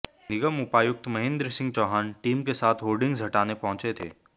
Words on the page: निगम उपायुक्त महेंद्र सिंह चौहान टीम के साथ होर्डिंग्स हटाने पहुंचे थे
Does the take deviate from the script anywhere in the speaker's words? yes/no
no